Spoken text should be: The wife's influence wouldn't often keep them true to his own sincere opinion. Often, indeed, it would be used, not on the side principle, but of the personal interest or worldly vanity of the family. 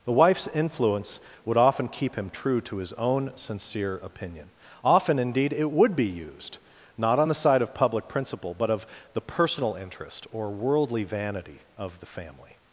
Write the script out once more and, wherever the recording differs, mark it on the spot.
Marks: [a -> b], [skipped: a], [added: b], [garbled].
The wife's influence [wouldn't -> would] often keep [them -> him] true to his own sincere opinion. Often, indeed, it would be used, not on the side [added: of public] principle, but of the personal interest or worldly vanity of the family.